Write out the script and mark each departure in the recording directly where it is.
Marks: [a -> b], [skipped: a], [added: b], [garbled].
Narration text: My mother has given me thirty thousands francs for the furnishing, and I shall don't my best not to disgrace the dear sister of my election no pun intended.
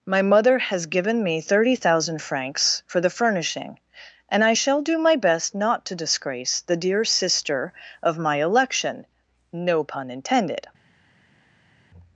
My mother has given me thirty [thousands -> thousand] francs for the furnishing, and I shall [don't -> do] my best not to disgrace the dear sister of my election no pun intended.